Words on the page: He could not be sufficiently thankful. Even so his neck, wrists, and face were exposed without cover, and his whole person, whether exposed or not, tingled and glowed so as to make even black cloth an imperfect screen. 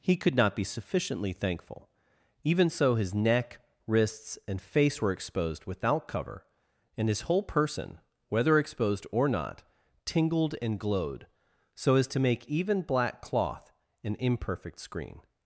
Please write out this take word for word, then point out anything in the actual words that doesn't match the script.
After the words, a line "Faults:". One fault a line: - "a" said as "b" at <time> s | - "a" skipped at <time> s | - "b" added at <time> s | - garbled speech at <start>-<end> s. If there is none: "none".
He could not be sufficiently thankful. Even so his neck, wrists, and face were exposed without cover, and his whole person, whether exposed or not, tingled and glowed so as to make even black cloth an imperfect screen.
Faults:
none